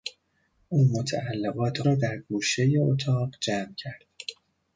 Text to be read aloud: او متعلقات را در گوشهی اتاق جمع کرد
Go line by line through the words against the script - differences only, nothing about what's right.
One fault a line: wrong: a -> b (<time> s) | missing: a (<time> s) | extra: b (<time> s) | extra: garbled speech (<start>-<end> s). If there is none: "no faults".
no faults